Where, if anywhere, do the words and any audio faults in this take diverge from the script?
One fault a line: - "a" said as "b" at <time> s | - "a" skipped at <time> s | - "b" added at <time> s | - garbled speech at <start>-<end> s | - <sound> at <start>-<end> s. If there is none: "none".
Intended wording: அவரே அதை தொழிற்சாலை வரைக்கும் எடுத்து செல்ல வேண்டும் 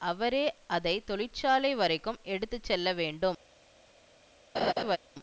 - laugh at 4.5-5.0 s